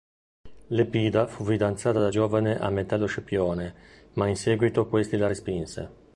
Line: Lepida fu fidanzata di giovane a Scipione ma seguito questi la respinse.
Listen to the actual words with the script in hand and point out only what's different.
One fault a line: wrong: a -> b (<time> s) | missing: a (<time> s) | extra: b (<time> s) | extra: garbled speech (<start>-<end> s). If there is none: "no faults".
wrong: di -> da (2.0 s)
extra: Metello (2.7 s)
extra: in (4.3 s)